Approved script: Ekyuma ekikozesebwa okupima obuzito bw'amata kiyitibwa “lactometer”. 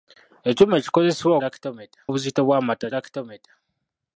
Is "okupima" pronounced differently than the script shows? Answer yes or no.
yes